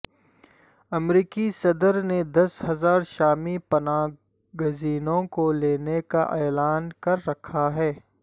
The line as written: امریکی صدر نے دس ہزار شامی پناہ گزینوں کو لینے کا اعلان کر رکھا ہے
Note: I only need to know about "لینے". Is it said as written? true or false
true